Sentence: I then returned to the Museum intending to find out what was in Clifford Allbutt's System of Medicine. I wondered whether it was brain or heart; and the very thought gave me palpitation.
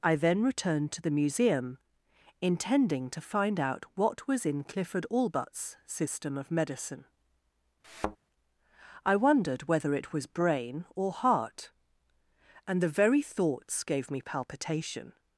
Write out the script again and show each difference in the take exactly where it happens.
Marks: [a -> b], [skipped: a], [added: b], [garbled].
I then returned to the Museum intending to find out what was in Clifford Allbutt's System of Medicine. I wondered whether it was brain or heart; and the very [thought -> thoughts] gave me palpitation.